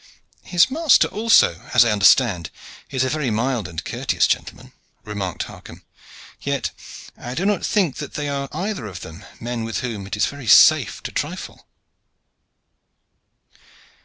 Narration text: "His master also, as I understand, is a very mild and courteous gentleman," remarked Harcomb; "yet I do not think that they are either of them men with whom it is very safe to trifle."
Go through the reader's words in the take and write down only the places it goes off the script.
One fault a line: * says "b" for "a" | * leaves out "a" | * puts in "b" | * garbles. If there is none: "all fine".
all fine